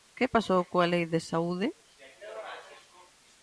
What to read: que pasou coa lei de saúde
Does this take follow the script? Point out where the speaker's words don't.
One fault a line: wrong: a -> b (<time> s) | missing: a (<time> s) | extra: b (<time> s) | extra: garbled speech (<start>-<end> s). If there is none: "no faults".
no faults